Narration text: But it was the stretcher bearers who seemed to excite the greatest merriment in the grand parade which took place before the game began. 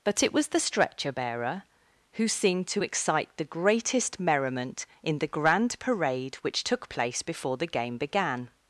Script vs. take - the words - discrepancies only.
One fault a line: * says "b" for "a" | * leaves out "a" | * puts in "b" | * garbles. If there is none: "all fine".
* says "bearer" for "bearers"